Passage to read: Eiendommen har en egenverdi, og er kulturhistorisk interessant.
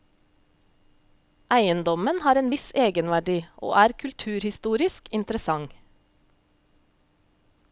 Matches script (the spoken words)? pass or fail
fail